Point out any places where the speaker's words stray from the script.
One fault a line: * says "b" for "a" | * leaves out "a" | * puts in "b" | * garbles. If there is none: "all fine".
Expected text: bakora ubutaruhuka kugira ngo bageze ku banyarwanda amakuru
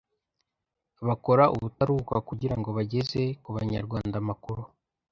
all fine